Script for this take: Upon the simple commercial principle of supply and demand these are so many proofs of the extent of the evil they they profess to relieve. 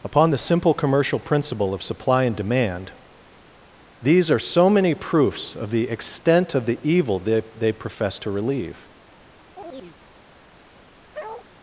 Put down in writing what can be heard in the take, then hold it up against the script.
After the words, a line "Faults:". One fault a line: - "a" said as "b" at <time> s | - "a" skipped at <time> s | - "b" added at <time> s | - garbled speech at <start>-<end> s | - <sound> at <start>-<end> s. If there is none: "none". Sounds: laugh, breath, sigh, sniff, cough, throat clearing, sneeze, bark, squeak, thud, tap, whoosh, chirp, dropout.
Upon the simple commercial principle of supply and demand these are so many proofs of the extent of the evil they they profess to relieve.
Faults:
- chirp at 9.6-10.0 s
- bark at 11.1-11.5 s